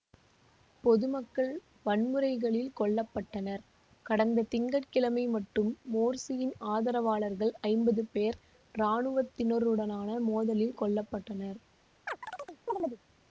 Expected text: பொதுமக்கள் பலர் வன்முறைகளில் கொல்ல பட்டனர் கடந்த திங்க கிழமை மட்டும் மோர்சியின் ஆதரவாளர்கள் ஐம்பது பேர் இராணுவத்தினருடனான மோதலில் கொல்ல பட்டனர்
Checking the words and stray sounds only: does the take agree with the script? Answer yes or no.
no